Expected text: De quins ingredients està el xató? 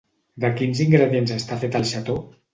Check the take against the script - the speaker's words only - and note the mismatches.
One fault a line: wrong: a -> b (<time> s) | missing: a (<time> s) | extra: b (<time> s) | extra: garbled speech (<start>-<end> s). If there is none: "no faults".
extra: fet (1.7 s)